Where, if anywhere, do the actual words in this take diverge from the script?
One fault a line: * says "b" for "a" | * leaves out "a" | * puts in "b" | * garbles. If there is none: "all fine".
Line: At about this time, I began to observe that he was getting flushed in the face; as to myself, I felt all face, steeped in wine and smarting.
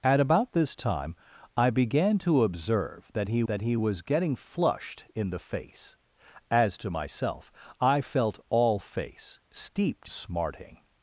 * puts in "that he"
* leaves out "in wine and"